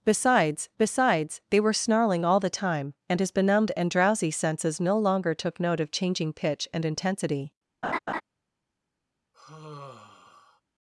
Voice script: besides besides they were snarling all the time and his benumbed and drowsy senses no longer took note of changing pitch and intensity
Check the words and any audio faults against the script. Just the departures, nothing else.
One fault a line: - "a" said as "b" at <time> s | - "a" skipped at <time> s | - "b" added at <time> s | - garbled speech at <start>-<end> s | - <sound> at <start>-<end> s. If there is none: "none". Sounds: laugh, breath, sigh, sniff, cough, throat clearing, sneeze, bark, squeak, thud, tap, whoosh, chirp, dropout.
- laugh at 7.8-8.2 s
- sigh at 9.3-10.6 s